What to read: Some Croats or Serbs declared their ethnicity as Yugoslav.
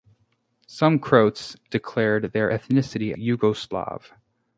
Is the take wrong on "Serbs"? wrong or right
wrong